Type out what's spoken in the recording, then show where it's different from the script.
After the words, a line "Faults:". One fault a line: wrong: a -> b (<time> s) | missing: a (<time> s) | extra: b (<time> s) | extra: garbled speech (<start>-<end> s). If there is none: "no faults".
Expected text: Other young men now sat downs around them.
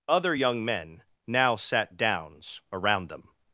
Other young men now sat downs around them.
Faults:
no faults